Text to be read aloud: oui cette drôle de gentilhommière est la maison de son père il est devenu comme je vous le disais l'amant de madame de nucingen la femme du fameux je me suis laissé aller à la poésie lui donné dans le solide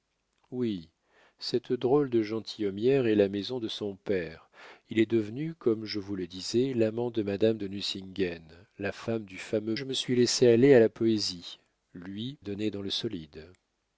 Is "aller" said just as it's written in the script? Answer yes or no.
yes